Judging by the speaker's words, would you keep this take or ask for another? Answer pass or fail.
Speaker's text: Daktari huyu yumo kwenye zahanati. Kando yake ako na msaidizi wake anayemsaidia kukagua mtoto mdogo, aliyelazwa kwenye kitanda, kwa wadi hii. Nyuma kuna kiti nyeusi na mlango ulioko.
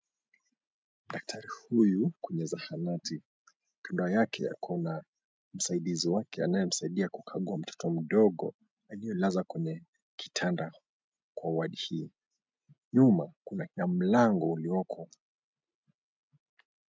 fail